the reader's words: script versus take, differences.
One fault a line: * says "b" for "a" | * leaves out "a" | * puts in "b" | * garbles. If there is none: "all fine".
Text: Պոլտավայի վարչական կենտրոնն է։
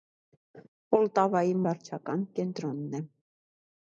all fine